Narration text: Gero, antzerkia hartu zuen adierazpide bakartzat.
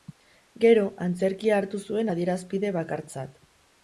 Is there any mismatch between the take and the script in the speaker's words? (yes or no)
no